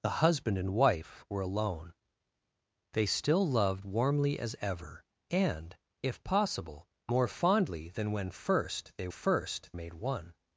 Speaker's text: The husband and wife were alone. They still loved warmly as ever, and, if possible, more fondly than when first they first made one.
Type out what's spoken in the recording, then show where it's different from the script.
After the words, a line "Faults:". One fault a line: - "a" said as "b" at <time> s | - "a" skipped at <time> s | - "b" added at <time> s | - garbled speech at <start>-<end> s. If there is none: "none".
The husband and wife were alone. They still loved warmly as ever, and, if possible, more fondly than when first they first made one.
Faults:
none